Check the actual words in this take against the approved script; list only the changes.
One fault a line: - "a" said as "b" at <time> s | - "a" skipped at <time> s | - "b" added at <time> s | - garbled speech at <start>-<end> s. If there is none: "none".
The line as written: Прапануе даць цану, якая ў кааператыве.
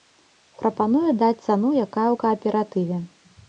none